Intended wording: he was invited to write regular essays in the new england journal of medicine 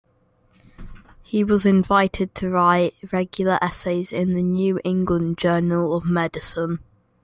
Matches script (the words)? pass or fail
pass